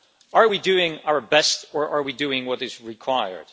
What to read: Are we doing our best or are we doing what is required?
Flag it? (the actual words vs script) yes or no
no